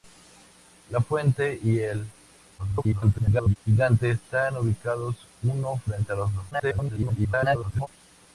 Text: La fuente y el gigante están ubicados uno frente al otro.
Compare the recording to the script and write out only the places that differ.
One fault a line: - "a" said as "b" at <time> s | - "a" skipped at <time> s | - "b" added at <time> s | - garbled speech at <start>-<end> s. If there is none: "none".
- garbled speech at 2.6-3.6 s
- garbled speech at 6.5-7.9 s